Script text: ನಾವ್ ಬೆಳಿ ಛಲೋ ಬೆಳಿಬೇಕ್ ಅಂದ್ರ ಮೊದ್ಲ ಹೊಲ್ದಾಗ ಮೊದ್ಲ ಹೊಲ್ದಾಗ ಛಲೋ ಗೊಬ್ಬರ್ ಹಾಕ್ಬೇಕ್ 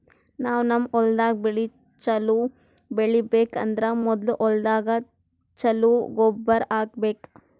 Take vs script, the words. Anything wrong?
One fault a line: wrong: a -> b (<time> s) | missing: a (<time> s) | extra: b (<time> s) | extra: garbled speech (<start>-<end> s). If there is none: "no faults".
extra: ನಮ್ ಹೊಲ್ದಾಗ್ (0.7 s)
missing: ಮೊದ್ಲ ಹೊಲ್ದಾಗ (5.0 s)